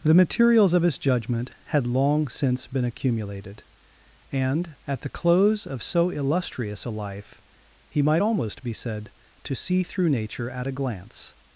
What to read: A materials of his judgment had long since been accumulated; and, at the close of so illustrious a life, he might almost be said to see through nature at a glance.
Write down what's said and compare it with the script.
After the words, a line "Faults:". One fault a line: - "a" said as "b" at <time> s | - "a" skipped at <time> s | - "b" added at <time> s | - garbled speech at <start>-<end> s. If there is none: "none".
The materials of his judgment had long since been accumulated; and, at the close of so illustrious a life, he might almost be said to see through nature at a glance.
Faults:
- "A" said as "The" at 0.0 s